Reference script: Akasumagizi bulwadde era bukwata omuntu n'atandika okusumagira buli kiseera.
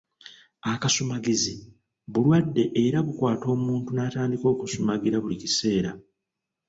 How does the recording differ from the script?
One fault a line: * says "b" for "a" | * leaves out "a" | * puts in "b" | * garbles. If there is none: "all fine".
all fine